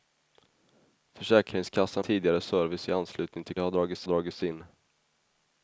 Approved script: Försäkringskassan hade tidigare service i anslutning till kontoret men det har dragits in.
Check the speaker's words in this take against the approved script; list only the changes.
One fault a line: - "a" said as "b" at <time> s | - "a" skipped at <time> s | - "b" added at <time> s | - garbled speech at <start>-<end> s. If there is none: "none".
- "hade" skipped at 2.0 s
- "kontoret men" skipped at 3.6 s
- "dragits" added at 4.1 s